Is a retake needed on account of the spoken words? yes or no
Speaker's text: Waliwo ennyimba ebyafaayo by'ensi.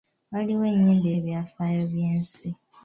no